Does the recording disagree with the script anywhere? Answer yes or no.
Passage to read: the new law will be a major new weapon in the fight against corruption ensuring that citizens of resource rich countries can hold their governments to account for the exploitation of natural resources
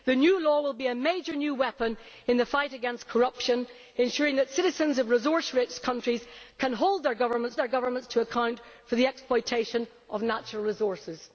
yes